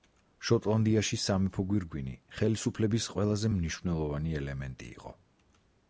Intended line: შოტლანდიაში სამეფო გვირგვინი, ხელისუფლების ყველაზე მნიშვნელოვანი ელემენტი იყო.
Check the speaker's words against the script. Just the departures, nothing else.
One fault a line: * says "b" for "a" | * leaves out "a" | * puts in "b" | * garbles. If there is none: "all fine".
all fine